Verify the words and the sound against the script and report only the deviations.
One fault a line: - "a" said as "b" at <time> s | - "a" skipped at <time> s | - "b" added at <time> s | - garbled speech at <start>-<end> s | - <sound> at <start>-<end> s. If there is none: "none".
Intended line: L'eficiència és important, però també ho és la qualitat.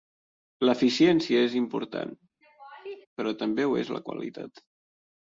- laugh at 2.4-3.1 s